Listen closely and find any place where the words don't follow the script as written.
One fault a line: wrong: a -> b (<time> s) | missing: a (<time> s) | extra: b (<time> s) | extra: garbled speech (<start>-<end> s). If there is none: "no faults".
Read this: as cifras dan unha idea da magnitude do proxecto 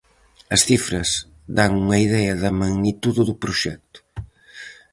no faults